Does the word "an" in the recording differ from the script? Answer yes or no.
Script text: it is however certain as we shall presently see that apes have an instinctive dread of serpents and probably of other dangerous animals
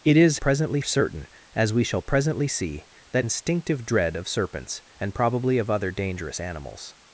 yes